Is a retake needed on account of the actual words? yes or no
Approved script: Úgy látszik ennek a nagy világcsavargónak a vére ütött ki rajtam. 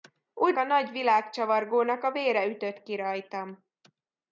yes